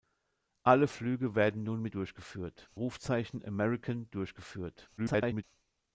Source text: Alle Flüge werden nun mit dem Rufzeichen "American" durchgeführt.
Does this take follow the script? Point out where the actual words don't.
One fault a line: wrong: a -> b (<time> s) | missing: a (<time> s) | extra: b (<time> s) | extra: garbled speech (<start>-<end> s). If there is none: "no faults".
wrong: dem -> durchgeführt (1.9 s)
extra: garbled speech (5.0-5.4 s)